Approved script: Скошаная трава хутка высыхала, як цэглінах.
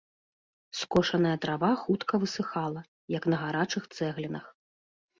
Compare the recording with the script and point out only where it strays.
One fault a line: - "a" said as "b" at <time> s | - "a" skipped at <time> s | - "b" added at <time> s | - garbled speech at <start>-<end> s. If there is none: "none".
- "на гарачых" added at 3.3 s